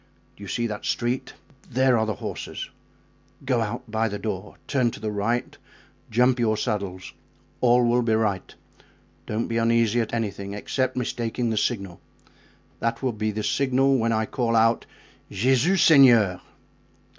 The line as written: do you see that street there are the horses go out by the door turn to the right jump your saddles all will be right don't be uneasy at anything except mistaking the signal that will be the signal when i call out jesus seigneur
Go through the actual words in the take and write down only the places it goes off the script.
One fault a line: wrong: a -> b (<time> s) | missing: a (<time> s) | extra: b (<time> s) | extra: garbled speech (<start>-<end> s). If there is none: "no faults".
no faults